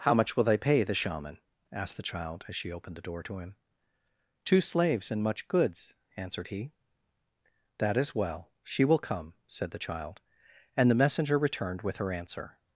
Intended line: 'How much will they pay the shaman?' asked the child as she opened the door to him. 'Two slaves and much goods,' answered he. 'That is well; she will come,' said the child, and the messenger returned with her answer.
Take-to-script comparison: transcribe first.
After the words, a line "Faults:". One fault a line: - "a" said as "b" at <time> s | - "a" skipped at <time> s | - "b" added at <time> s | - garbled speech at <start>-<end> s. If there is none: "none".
'How much will they pay the shaman?' asked the child as she opened the door to him. 'Two slaves and much goods,' answered he. 'That is well; she will come,' said the child, and the messenger returned with her answer.
Faults:
none